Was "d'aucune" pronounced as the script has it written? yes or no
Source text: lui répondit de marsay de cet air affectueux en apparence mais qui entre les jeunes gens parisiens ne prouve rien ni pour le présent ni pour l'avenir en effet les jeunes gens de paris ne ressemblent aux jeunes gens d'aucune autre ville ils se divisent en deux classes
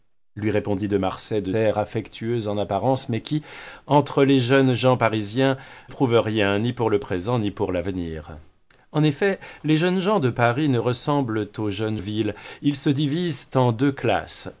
no